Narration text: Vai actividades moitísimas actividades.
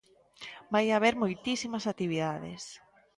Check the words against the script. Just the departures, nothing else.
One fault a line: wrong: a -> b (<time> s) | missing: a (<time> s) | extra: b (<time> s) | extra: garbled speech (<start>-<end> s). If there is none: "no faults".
wrong: actividades -> haber (0.9 s)